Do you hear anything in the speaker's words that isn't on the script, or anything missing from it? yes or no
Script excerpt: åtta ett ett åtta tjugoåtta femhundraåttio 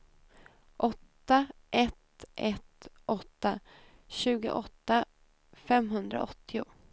no